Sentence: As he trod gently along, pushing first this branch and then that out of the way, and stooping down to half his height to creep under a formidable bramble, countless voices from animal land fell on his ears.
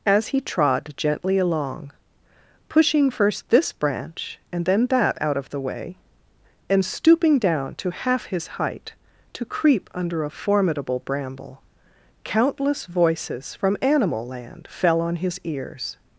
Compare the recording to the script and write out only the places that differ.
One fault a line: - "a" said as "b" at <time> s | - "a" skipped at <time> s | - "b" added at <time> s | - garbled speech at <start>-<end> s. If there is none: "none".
none